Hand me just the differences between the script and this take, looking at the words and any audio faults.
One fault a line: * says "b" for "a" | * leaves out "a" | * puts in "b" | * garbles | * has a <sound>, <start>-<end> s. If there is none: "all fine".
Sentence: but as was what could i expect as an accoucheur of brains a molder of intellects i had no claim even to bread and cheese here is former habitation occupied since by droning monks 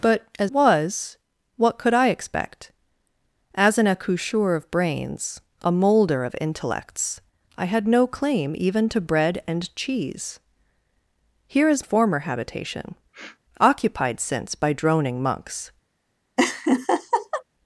* has a sniff, 13.1-13.4 s
* has a laugh, 16.4-17.4 s